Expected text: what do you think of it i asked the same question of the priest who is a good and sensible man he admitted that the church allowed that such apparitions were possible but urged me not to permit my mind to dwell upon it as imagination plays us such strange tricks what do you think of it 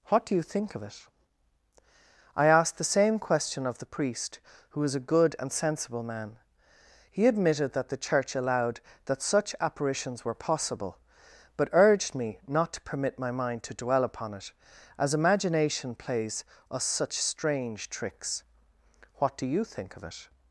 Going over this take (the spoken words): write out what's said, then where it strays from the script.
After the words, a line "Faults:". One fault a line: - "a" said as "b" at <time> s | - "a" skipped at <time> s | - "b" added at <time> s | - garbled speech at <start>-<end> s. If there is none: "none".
what do you think of it i asked the same question of the priest who was a good and sensible man he admitted that the church allowed that such apparitions were possible but urged me not to permit my mind to dwell upon it as imagination plays us such strange tricks what do you think of it
Faults:
- "is" said as "was" at 4.8 s